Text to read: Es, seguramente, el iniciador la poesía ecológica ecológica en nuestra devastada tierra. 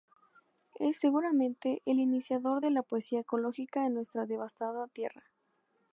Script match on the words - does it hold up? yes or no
no